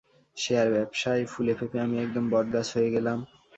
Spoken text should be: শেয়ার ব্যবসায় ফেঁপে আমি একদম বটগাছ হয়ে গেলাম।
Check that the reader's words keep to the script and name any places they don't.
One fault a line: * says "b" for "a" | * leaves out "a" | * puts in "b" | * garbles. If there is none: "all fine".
* puts in "ফুলে"